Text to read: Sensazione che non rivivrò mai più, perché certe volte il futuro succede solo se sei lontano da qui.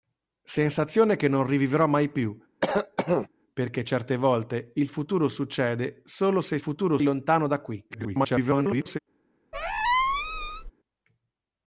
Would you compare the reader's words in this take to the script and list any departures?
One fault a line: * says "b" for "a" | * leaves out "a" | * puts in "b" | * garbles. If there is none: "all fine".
* says "futuro" for "sei"
* garbles